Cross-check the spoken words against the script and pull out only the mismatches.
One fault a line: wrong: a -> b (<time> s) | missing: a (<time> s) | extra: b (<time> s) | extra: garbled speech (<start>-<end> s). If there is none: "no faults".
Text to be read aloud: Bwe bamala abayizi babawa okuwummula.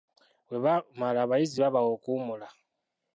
no faults